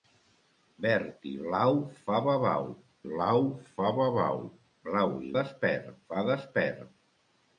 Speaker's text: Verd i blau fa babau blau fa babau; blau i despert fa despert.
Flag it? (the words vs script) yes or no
no